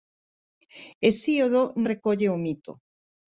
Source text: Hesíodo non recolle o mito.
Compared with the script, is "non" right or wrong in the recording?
wrong